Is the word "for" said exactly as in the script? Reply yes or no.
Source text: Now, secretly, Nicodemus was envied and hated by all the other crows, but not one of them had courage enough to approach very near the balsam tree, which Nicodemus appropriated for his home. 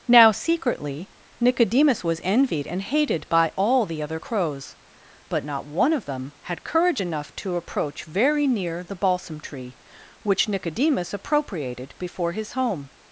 no